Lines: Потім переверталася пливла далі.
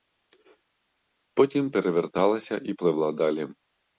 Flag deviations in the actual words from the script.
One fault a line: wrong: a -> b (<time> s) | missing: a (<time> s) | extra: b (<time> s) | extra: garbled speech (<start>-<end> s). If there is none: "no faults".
extra: і (2.6 s)